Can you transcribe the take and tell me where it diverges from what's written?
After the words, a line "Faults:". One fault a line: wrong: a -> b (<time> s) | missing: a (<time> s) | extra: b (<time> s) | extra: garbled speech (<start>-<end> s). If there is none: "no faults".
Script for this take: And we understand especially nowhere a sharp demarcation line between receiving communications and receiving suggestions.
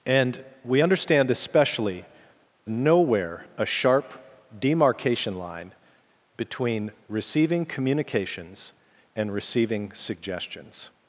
And we understand especially nowhere a sharp demarcation line between receiving communications and receiving suggestions.
Faults:
no faults